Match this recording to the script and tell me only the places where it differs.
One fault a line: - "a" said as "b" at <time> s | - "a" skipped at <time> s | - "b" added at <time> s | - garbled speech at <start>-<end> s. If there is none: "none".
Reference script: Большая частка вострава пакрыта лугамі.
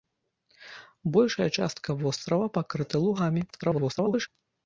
- garbled speech at 3.5-4.3 s